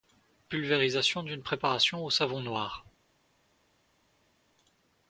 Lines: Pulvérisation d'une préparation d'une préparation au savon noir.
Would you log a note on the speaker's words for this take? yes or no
yes